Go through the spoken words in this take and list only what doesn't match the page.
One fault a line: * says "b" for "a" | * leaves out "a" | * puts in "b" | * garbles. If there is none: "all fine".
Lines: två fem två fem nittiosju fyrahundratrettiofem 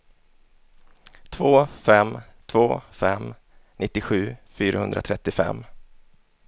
all fine